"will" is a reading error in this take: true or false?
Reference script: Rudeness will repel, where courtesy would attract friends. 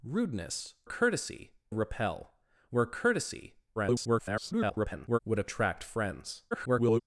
true